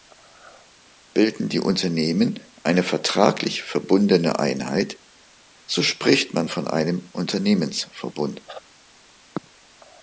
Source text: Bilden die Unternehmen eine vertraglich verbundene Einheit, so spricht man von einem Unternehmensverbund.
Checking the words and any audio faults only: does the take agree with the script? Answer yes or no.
yes